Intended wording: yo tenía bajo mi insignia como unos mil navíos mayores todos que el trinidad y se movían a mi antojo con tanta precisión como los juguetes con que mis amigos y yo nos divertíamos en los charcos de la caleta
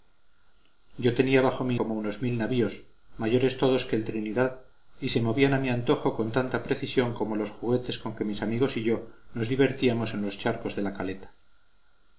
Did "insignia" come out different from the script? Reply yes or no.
yes